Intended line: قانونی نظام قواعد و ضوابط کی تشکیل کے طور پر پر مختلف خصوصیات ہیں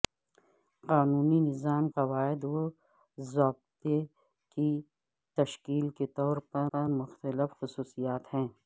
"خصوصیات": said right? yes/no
yes